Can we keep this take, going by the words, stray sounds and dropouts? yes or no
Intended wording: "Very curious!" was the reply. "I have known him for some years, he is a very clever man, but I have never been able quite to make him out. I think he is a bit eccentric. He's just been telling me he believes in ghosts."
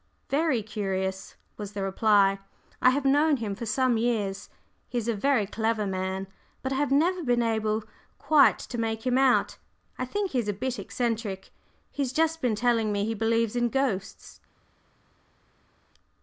yes